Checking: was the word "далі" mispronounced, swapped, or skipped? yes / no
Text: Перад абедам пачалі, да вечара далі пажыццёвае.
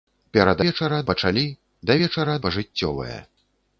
yes